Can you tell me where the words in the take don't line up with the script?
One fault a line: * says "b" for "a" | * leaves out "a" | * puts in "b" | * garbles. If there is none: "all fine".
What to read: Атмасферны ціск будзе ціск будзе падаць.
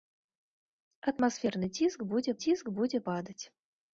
all fine